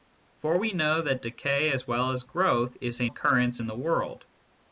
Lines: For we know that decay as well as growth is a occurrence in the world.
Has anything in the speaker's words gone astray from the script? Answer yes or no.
no